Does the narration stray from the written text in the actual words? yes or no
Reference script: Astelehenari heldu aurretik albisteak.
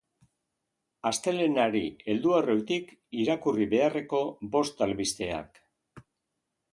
yes